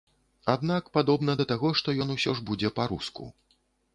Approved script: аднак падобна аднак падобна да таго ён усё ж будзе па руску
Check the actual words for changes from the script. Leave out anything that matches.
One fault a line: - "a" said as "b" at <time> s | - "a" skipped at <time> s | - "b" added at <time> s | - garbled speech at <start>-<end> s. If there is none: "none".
- "аднак падобна" skipped at 1.4 s
- "што" added at 1.8 s